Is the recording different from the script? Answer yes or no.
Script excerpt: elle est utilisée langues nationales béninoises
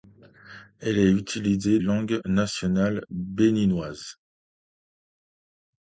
no